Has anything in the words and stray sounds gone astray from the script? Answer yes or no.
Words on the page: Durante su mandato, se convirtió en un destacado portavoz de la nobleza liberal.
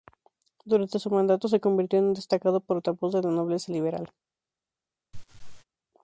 yes